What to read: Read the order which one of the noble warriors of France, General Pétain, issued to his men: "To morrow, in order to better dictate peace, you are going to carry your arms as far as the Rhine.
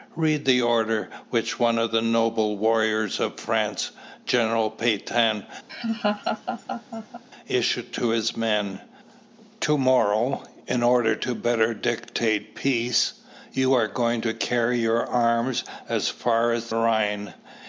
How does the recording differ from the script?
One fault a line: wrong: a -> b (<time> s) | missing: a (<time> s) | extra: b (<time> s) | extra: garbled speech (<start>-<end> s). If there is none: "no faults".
missing: the (16.7 s)